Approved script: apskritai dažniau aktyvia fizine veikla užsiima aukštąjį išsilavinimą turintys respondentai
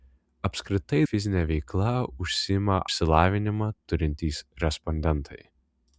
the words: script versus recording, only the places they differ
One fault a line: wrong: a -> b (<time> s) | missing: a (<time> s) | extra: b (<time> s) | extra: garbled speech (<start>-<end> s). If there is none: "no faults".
missing: dažniau aktyvia (1.0 s)
missing: aukštąjį (2.8 s)